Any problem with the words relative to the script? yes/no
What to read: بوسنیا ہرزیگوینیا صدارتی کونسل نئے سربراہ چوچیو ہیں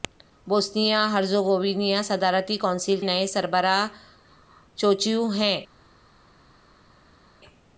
no